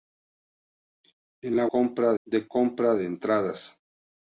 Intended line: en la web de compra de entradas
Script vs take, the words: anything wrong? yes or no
yes